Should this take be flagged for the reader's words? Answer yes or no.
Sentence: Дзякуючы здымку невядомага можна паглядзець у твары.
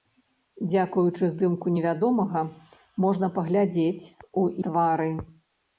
no